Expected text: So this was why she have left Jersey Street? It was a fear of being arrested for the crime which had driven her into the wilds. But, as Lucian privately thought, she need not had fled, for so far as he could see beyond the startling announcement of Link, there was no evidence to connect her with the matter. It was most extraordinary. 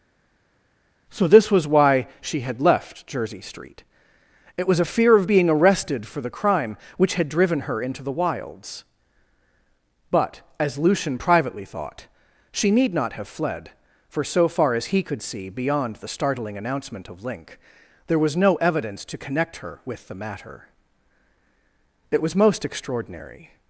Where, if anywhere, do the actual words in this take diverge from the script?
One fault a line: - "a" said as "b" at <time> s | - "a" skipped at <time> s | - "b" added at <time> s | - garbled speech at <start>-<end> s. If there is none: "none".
- "have" said as "had" at 2.4 s
- "had" said as "have" at 13.1 s